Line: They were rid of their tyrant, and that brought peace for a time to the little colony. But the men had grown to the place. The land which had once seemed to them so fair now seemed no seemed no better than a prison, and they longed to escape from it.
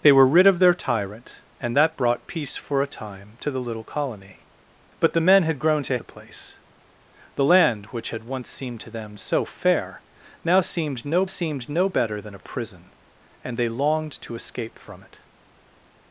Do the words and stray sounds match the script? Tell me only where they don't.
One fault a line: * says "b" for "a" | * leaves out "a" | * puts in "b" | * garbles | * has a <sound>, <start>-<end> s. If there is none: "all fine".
all fine